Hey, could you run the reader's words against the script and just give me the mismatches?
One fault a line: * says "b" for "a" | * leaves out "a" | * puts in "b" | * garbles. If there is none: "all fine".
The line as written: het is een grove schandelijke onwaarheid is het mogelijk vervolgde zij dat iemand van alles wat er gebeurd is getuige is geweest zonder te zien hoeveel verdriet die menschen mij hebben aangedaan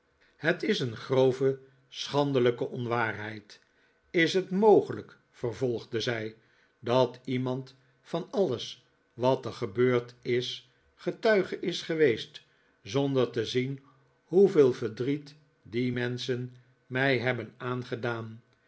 all fine